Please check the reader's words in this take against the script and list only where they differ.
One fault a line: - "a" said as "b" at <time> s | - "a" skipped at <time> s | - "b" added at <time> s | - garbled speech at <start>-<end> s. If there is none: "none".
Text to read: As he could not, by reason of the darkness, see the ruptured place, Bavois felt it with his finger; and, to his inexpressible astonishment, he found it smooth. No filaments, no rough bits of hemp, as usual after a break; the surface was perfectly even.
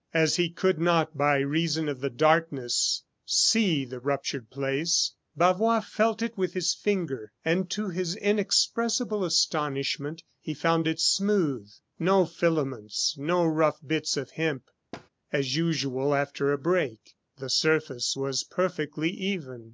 none